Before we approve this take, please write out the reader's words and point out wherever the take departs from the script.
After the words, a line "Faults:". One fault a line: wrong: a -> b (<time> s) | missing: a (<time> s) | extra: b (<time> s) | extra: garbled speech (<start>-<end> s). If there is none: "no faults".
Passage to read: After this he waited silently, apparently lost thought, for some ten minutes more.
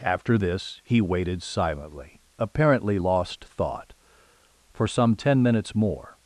After this he waited silently, apparently lost thought, for some ten minutes more.
Faults:
no faults